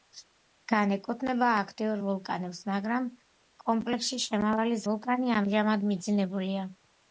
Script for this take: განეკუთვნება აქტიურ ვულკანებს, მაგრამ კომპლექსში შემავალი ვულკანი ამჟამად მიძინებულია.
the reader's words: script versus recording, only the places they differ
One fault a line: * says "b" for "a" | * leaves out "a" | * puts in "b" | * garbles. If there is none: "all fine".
all fine